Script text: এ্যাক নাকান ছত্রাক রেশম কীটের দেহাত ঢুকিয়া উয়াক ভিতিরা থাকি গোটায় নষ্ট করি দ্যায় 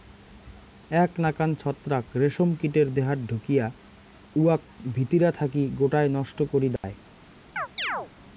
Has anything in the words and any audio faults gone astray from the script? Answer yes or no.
yes